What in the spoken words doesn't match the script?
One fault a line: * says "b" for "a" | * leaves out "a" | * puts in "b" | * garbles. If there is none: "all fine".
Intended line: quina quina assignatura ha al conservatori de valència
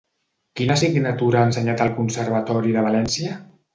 * leaves out "quina"
* puts in "ensenyat"